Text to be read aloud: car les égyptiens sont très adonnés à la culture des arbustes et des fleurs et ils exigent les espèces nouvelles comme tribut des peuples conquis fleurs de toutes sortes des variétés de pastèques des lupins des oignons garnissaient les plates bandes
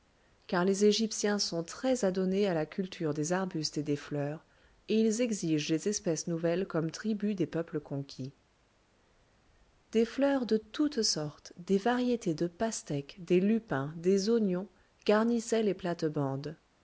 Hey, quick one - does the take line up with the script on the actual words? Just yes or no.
no